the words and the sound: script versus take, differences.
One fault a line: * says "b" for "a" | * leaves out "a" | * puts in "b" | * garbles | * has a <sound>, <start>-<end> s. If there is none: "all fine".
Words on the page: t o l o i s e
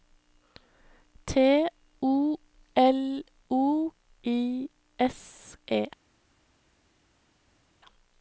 all fine